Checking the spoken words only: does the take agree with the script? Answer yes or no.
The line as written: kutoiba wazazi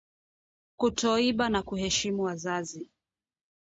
no